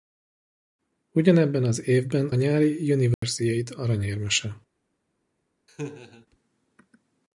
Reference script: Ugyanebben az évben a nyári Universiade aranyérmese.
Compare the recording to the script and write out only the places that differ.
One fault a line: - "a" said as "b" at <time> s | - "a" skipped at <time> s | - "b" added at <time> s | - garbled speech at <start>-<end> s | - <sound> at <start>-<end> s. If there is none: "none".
- "a" skipped at 2.3 s
- dropout at 3.1-3.2 s
- laugh at 5.7-6.3 s